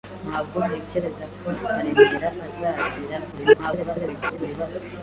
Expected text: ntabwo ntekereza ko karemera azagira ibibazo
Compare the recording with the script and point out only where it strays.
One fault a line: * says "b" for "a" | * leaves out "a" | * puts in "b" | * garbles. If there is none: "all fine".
* garbles